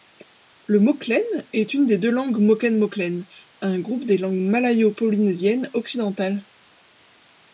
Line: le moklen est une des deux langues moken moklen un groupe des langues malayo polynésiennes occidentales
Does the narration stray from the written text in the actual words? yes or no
no